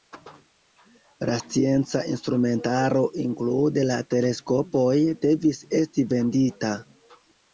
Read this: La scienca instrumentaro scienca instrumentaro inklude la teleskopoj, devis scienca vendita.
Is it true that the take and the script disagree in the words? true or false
true